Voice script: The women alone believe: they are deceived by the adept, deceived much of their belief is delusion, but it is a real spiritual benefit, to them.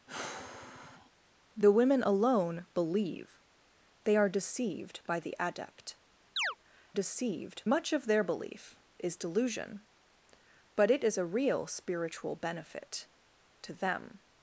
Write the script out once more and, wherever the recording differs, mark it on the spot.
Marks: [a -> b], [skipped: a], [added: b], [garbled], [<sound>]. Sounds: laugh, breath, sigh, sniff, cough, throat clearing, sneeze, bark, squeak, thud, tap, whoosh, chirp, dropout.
[sigh] The women alone believe: they are deceived by the adept, [chirp] deceived much of their belief is delusion, but it is a real spiritual benefit, to them.